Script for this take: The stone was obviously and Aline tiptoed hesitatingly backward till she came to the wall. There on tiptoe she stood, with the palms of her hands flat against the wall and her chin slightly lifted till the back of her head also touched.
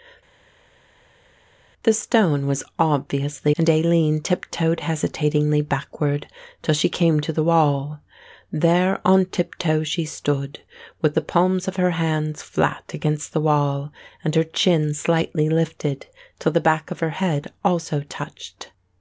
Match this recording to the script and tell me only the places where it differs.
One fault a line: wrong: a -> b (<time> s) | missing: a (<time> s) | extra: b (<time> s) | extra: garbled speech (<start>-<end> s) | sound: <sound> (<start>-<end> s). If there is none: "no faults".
no faults